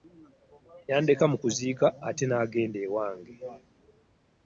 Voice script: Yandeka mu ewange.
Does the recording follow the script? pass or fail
fail